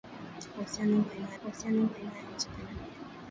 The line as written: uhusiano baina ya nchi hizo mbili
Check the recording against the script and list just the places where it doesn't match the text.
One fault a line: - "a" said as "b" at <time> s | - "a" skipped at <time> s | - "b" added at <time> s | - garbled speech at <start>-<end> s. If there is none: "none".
- "uhusiano baina" added at 1.4 s
- "hizo" skipped at 2.5 s